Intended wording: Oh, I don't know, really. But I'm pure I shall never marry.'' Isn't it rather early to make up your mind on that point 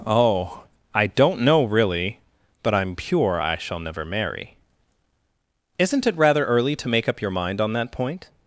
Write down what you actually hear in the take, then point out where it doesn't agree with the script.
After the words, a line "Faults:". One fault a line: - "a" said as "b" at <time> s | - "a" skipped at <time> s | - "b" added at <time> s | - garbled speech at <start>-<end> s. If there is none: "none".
Oh, I don't know, really. But I'm pure I shall never marry.'' Isn't it rather early to make up your mind on that point
Faults:
none